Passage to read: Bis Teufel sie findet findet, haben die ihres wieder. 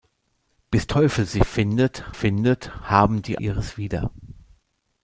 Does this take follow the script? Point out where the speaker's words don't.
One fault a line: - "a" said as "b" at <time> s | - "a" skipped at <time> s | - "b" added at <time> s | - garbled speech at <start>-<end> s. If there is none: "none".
none